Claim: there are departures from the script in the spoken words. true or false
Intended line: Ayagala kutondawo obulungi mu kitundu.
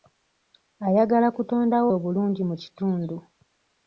false